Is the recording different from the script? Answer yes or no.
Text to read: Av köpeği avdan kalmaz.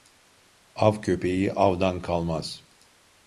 no